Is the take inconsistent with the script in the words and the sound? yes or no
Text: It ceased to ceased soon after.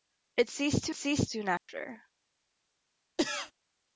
yes